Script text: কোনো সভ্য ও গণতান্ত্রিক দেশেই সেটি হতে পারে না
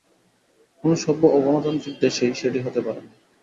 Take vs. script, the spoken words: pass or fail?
pass